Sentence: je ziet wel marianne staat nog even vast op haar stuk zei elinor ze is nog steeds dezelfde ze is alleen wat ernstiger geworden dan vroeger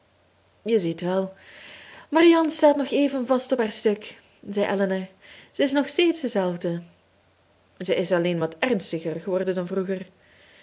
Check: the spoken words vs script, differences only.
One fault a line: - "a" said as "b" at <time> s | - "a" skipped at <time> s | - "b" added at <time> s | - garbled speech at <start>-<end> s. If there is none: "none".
none